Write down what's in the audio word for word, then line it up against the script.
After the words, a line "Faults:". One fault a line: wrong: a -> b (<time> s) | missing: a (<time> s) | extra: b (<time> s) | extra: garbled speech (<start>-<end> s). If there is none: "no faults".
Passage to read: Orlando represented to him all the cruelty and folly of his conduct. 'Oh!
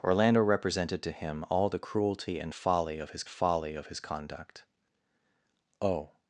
Orlando represented to him all the cruelty and folly of his folly of his conduct. 'Oh!
Faults:
extra: folly of his (3.3 s)